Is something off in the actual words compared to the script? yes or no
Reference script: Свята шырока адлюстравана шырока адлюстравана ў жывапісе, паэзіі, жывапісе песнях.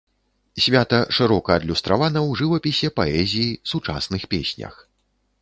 yes